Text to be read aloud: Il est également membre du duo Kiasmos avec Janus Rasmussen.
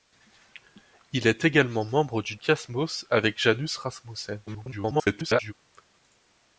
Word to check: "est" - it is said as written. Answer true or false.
true